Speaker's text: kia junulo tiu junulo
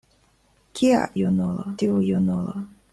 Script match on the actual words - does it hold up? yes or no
yes